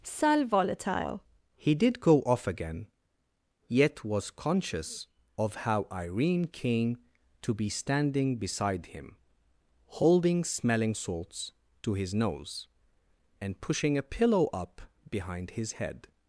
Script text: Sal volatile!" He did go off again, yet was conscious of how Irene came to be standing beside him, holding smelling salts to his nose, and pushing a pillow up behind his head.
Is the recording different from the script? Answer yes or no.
no